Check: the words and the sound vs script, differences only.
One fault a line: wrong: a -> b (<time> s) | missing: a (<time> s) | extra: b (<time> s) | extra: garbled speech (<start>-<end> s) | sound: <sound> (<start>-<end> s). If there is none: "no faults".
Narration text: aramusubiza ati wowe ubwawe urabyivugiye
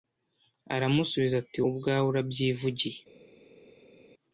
missing: wowe (1.6 s)